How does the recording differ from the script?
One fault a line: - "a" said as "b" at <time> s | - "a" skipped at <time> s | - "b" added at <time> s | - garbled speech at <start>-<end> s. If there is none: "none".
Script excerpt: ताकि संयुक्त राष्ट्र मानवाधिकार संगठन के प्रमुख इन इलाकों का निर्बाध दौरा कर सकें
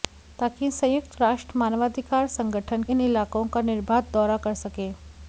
- "के प्रमुख" skipped at 2.8 s